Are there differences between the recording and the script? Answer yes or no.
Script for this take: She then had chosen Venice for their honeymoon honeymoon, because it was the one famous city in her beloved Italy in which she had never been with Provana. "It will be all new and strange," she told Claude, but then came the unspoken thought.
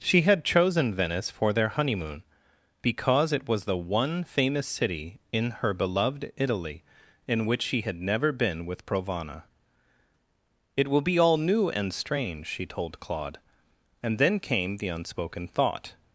yes